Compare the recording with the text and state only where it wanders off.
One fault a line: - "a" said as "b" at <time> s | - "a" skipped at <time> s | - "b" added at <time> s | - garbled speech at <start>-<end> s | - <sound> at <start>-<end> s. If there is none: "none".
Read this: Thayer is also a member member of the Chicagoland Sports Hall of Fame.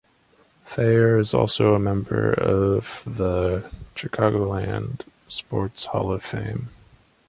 - "member" skipped at 2.3 s